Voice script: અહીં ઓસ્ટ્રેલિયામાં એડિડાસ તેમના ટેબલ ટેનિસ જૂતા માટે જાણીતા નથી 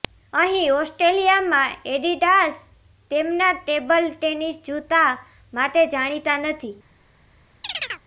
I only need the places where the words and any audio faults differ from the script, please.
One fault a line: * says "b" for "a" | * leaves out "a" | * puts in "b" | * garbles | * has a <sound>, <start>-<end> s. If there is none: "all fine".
* has a chirp, 7.6-8.0 s